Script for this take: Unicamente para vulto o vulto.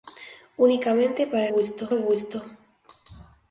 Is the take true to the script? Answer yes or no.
yes